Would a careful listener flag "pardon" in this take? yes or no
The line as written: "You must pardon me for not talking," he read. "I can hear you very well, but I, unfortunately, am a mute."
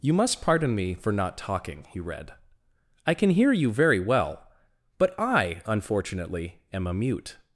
no